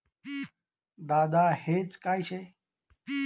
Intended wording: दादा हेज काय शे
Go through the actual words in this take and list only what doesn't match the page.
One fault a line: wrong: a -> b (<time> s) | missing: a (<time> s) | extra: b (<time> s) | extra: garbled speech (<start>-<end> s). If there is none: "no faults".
no faults